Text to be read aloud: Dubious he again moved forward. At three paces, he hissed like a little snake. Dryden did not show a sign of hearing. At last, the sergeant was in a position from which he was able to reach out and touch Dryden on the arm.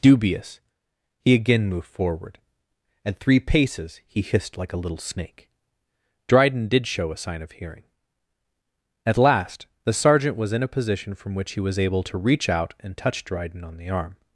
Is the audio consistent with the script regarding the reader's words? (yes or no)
no